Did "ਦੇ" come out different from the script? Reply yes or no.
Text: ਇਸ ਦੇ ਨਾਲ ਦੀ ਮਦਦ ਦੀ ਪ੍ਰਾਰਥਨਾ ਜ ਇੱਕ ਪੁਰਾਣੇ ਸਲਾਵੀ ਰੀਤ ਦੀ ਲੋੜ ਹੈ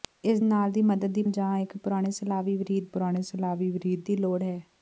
yes